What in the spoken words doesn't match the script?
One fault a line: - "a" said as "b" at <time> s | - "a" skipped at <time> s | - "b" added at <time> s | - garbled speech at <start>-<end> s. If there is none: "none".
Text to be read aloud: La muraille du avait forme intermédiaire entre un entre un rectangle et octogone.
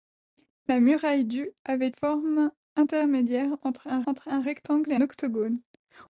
none